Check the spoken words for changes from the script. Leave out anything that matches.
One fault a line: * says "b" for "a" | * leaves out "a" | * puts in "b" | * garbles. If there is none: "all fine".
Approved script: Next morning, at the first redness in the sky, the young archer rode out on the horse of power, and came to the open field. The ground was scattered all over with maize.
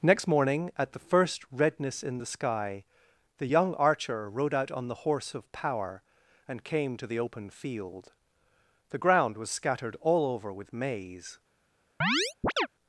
all fine